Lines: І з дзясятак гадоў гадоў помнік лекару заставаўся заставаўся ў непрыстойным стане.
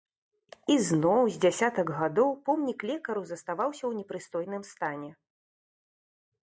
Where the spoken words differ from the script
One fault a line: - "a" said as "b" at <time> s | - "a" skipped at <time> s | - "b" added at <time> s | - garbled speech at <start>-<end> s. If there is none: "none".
- "зноў" added at 0.9 s
- "гадоў" skipped at 2.3 s
- "заставаўся" skipped at 3.8 s